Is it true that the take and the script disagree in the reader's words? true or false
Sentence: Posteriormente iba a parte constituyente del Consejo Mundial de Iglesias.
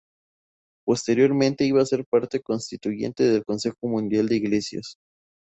true